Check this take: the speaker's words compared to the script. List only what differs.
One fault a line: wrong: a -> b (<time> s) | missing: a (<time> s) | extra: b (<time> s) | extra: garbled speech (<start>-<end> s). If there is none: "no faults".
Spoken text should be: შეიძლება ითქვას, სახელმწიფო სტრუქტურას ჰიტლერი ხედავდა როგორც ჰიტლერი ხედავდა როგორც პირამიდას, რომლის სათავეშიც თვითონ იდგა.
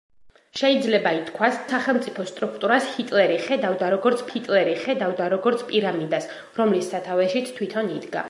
no faults